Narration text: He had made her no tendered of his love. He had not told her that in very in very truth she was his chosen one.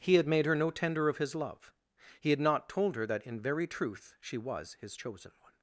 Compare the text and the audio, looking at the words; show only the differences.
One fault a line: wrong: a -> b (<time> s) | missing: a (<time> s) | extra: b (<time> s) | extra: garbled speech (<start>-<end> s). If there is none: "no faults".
wrong: tendered -> tender (0.7 s)
missing: in very (3.7 s)